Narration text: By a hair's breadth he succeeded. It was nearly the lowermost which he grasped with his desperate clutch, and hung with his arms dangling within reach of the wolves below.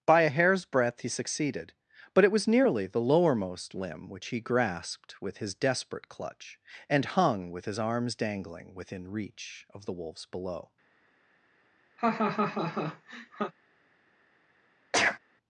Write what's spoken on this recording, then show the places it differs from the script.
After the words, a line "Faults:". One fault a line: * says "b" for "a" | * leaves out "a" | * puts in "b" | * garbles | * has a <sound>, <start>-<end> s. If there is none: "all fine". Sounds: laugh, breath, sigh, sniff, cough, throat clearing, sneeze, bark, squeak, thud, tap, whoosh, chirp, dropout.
By a hair's breadth he succeeded. But it was nearly the lowermost limb which he grasped with his desperate clutch, and hung with his arms dangling within reach of the wolves below.
Faults:
* puts in "But"
* puts in "limb"
* has a laugh, 12.0-13.5 s
* has a sneeze, 14.9-15.2 s